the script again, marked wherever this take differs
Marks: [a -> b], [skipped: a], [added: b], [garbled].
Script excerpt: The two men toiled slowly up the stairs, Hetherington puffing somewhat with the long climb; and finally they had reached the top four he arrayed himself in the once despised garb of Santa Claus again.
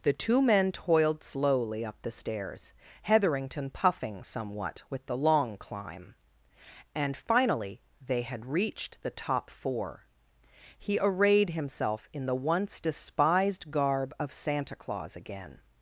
The two men toiled slowly up the stairs, Hetherington puffing somewhat with the long climb; and finally they had reached the top four he arrayed himself in the once despised garb of Santa Claus again.